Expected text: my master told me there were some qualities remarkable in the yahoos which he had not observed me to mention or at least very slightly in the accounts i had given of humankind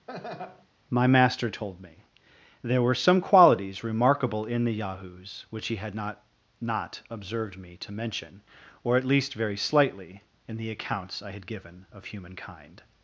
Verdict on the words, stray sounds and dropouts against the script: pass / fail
fail